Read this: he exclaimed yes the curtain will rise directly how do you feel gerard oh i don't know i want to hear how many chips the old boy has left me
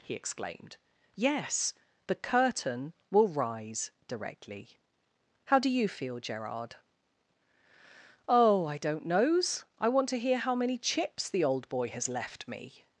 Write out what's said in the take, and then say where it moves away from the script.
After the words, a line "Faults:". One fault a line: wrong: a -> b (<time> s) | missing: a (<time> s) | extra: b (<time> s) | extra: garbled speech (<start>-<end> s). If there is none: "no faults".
he exclaimed yes the curtain will rise directly how do you feel gerard oh i don't knows i want to hear how many chips the old boy has left me
Faults:
wrong: know -> knows (9.1 s)